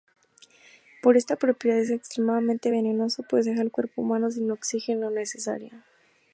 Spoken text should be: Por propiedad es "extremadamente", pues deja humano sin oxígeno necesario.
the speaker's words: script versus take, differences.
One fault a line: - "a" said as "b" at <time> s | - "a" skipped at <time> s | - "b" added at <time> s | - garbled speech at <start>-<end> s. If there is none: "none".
- "esta" added at 1.1 s
- "venenoso" added at 2.7 s
- "al cuerpo" added at 3.6 s